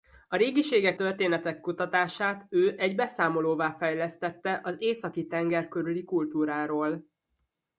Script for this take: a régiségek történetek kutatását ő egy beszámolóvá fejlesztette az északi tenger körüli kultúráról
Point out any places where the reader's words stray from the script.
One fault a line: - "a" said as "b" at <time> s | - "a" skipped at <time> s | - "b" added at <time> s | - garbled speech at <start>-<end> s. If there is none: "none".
none